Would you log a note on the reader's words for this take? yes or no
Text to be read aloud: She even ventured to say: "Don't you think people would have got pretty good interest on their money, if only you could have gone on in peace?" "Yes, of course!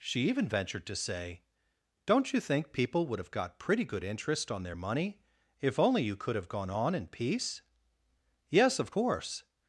no